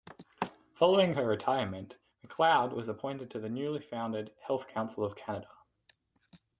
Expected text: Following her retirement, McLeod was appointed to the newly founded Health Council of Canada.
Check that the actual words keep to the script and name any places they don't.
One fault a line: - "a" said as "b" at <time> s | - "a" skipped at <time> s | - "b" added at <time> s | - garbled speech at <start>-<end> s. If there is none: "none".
none